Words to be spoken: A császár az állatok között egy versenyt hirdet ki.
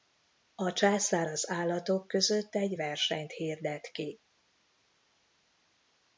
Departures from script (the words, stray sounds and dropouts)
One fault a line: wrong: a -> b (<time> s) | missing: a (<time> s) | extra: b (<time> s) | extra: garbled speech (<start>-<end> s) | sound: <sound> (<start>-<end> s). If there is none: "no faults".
no faults